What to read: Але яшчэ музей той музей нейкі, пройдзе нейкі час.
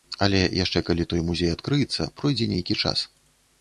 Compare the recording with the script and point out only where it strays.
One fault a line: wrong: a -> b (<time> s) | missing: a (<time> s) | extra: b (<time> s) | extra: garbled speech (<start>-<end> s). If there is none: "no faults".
wrong: музей -> калі (0.9 s)
wrong: нейкі -> адкрыецца (1.6 s)